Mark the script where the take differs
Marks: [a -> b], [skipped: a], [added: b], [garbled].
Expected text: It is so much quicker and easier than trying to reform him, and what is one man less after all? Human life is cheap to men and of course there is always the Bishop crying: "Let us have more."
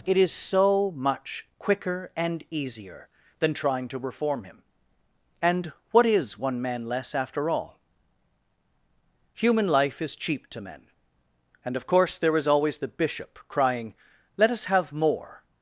It is so much quicker and easier than trying to reform him, and what is one man less after all? Human life is cheap to men and of course there is always the Bishop crying: "Let us have more."